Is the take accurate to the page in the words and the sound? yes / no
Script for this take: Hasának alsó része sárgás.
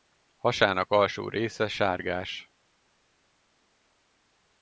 yes